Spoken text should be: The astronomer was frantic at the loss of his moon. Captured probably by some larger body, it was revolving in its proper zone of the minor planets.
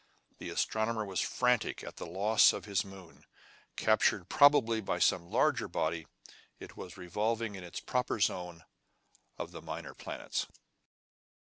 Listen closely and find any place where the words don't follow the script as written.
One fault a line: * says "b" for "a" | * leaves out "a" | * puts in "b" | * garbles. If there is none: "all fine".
all fine